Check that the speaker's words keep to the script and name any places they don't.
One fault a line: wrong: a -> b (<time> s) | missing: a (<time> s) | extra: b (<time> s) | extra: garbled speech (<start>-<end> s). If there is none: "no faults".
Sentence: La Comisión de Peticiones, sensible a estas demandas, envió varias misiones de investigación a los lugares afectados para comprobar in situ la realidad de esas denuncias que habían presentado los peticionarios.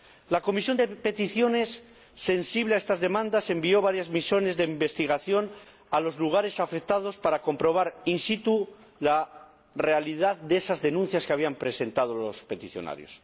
no faults